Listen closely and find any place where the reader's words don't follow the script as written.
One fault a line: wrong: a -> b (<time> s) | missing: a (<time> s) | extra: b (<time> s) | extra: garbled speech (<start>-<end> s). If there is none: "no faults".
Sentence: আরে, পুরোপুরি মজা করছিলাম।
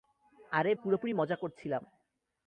no faults